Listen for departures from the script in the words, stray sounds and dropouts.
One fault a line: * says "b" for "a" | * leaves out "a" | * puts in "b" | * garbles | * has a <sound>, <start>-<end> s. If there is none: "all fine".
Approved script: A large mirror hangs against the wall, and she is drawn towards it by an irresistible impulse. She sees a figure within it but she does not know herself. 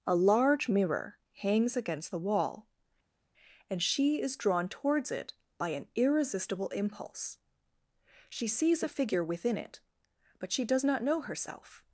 all fine